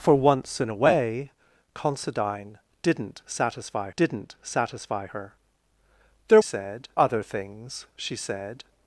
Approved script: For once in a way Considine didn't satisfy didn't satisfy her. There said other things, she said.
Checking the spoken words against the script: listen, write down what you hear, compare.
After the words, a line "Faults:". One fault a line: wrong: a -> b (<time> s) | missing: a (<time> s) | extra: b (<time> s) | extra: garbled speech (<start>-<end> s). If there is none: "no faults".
For once in a way Considine didn't satisfy didn't satisfy her. There said other things, she said.
Faults:
no faults